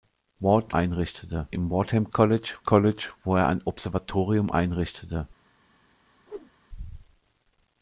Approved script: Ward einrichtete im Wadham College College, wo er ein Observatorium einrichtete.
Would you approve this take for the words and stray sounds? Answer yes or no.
no